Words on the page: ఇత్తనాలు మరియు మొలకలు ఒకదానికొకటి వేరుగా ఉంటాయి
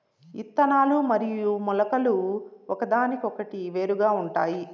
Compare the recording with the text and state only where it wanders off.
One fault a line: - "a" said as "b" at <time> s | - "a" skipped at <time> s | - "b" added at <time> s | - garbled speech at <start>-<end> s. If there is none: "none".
none